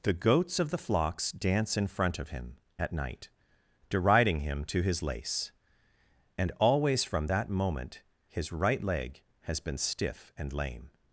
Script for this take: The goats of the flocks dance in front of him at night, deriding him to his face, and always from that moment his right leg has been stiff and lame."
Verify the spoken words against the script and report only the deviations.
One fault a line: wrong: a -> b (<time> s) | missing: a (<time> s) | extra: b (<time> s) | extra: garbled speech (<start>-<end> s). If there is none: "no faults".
wrong: face -> lace (5.0 s)